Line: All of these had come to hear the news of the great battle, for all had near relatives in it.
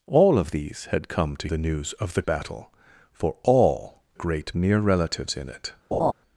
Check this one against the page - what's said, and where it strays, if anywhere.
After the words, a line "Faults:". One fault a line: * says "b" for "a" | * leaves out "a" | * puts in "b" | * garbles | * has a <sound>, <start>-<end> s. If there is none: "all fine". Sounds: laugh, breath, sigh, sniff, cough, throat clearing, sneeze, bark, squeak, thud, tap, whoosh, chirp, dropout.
All of these had come to the news of the battle, for all great near relatives in it.
Faults:
* leaves out "hear"
* leaves out "great"
* says "great" for "had"
* has a laugh, 5.9-6.1 s